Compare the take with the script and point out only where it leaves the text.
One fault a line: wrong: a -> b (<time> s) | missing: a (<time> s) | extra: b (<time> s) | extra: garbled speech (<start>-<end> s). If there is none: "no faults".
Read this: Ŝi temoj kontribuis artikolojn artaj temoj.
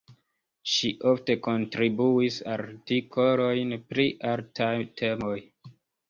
wrong: temoj -> ofte (1.1 s)
extra: pri (3.9 s)